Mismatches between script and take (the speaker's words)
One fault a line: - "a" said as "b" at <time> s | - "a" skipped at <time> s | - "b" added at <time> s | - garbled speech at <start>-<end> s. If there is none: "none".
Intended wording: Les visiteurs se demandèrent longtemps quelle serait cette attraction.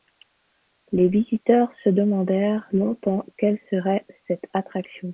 none